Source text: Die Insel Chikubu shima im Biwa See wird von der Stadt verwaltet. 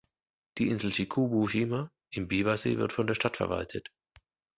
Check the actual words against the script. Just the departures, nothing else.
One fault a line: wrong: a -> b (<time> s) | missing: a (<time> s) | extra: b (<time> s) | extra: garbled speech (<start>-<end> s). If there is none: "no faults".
no faults